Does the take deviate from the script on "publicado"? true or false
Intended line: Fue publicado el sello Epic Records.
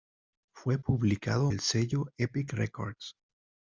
false